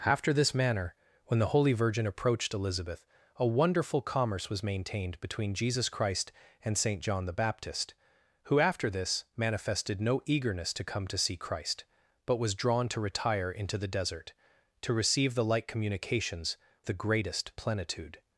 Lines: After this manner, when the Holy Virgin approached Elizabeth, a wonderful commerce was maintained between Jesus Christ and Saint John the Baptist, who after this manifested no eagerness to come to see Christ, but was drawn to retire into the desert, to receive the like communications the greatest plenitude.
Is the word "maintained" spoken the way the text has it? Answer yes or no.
yes